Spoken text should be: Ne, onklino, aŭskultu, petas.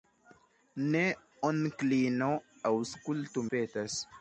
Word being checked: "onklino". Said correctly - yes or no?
yes